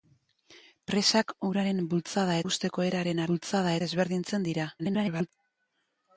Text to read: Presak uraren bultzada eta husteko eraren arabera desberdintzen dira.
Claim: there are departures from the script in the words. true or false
true